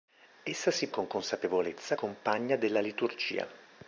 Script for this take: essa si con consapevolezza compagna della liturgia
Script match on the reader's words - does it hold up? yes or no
yes